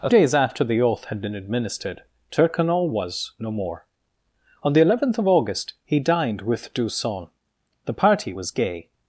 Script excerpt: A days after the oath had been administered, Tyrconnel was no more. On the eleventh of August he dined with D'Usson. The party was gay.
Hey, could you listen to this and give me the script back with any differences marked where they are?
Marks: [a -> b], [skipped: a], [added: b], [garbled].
A days after the oath had been administered, Tyrconnel was no more. On the eleventh of August he dined with D'Usson. The party was gay.